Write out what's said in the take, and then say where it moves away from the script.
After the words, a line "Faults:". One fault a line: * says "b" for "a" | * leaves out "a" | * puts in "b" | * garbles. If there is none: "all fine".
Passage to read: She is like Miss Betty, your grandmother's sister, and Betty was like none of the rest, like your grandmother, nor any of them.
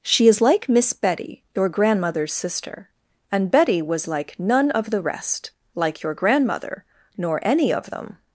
She is like Miss Betty, your grandmother's sister, and Betty was like none of the rest, like your grandmother, nor any of them.
Faults:
all fine